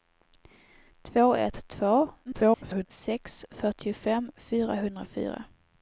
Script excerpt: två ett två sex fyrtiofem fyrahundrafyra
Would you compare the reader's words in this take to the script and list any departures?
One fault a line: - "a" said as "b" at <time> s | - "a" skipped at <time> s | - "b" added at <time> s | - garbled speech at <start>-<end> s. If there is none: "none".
- garbled speech at 2.2-2.9 s